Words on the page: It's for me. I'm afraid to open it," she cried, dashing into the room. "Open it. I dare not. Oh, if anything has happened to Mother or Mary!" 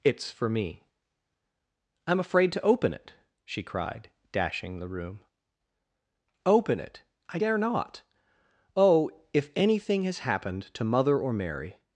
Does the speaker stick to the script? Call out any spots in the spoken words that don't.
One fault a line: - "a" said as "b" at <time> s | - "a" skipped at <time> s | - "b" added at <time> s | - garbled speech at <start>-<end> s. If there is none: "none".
- "into" skipped at 4.8 s